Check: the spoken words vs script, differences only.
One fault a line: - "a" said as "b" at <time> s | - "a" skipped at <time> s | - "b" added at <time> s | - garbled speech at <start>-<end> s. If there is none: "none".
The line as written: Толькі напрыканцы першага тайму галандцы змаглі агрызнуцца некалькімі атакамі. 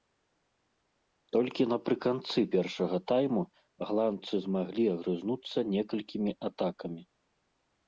none